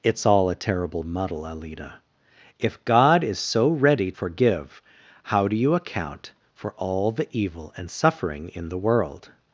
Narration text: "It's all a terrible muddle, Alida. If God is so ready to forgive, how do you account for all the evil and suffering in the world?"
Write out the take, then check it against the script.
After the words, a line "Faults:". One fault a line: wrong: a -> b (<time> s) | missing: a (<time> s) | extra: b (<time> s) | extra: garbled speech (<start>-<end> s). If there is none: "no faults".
"It's all a terrible muddle, Alida. If God is so ready forgive, how do you account for all the evil and suffering in the world?"
Faults:
missing: to (4.1 s)